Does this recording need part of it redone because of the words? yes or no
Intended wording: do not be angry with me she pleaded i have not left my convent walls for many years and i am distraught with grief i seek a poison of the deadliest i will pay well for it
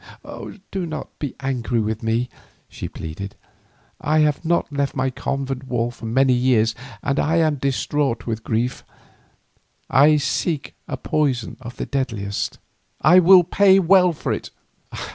no